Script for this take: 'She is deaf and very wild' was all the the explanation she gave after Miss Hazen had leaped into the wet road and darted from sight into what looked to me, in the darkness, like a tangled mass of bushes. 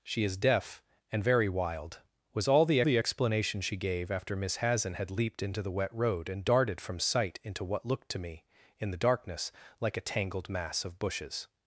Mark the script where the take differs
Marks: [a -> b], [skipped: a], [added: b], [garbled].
'She is deaf and very wild' was all the the explanation she gave after Miss Hazen had leaped into the wet road and darted from sight into what looked to me, in the darkness, like a tangled mass of bushes.